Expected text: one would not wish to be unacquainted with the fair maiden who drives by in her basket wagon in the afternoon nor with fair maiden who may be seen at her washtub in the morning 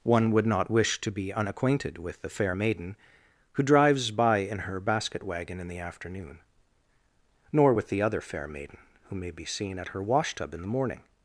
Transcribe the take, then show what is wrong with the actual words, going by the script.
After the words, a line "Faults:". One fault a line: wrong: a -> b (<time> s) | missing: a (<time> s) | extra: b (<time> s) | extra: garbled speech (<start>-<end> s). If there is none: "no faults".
one would not wish to be unacquainted with the fair maiden who drives by in her basket wagon in the afternoon nor with the other fair maiden who may be seen at her washtub in the morning
Faults:
extra: the other (7.9 s)